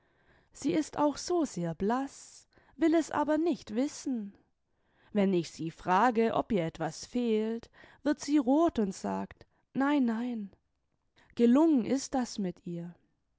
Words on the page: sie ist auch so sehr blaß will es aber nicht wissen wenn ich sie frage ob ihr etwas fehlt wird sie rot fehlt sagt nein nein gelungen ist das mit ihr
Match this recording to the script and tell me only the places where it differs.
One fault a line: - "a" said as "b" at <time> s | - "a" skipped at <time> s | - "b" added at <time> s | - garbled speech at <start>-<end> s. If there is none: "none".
- "fehlt" said as "und" at 8.8 s